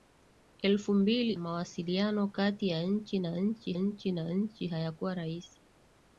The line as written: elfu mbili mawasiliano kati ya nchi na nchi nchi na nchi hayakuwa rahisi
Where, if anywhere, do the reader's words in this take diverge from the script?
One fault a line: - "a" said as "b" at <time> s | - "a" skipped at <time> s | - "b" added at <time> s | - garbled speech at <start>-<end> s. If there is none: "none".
none